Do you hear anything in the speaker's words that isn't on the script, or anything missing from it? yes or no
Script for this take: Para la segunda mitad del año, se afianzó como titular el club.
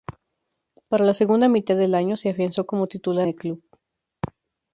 no